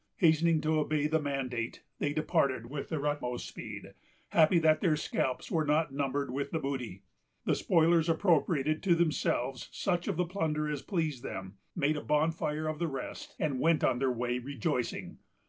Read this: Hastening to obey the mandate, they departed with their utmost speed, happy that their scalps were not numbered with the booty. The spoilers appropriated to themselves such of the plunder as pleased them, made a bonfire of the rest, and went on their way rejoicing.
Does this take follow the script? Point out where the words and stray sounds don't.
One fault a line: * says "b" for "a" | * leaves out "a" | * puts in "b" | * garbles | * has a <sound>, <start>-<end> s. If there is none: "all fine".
all fine